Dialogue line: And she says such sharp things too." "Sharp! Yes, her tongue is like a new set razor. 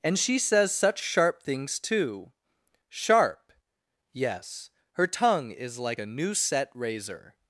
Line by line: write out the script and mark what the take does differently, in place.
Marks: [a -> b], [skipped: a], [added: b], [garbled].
And she says such sharp things too." "Sharp! Yes, her tongue is like a new set razor.